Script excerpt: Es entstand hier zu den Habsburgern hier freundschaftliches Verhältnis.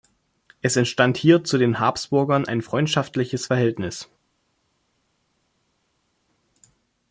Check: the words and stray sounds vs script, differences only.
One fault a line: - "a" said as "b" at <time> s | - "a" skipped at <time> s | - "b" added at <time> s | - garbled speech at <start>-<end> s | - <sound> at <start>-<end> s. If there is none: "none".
- "hier" said as "ein" at 2.5 s